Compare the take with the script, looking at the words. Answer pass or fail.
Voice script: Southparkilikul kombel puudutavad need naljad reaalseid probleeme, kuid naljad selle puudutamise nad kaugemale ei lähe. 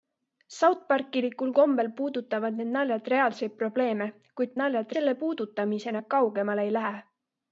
pass